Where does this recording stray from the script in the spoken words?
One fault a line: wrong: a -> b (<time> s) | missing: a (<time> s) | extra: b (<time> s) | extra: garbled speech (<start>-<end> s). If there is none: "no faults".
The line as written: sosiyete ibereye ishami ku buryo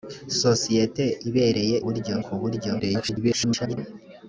wrong: ishami -> buryo (1.8 s)
extra: garbled speech (2.8-3.8 s)